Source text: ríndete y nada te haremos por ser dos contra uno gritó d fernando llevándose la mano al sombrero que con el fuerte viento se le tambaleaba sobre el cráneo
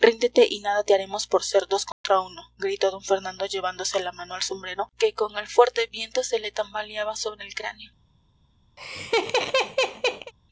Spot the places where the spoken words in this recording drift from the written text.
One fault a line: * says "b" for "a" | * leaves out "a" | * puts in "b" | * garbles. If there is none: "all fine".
all fine